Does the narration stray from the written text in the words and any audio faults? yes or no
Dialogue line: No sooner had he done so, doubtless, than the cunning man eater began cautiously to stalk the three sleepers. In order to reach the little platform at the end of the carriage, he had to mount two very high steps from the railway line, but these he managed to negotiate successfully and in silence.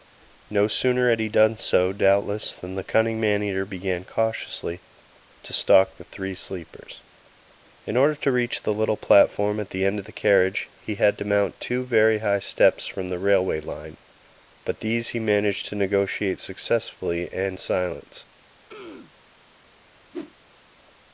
yes